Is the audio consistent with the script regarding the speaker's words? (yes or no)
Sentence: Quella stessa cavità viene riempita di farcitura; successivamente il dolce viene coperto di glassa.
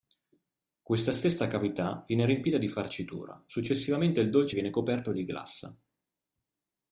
no